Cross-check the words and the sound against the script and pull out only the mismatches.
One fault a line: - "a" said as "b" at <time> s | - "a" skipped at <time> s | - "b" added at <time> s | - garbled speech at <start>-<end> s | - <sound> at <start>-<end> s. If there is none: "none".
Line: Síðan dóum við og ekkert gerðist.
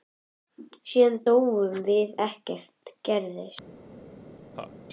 - laugh at 4.5-4.7 s